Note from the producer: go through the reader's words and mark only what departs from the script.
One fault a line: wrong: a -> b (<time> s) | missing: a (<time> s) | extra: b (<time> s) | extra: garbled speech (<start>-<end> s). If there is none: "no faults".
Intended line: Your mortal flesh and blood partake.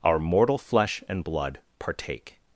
wrong: Your -> Our (0.0 s)